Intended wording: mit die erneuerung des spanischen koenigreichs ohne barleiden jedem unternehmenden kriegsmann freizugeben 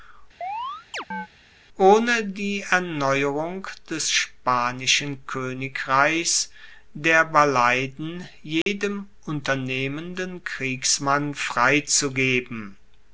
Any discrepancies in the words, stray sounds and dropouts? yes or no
yes